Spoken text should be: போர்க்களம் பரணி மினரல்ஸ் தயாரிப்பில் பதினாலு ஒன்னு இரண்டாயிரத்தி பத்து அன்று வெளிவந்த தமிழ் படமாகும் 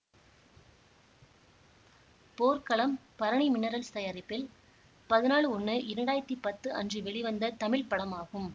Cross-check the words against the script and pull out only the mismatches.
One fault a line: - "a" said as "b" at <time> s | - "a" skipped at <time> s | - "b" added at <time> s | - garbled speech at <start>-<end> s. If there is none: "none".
none